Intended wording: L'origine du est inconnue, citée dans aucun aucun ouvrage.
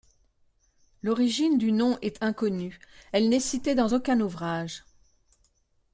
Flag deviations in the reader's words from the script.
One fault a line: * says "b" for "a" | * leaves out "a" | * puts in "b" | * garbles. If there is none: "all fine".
* puts in "nom"
* puts in "elle n'est"
* leaves out "aucun"